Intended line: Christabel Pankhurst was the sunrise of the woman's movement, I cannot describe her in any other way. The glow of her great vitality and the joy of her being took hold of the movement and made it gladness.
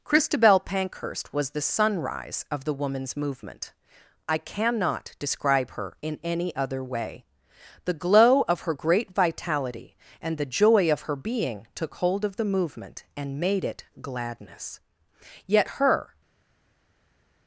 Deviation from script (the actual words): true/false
true